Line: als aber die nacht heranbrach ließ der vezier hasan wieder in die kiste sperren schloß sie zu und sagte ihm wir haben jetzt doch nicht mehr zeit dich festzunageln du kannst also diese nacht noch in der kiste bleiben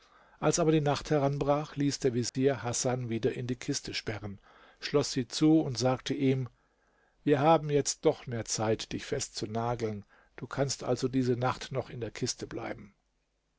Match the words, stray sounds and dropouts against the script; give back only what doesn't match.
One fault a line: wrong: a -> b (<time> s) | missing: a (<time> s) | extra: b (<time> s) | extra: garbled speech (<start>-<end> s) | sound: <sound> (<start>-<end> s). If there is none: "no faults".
sound: dropout (2.3-2.3 s)
missing: nicht (8.2 s)